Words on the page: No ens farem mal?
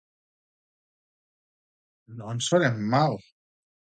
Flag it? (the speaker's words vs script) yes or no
no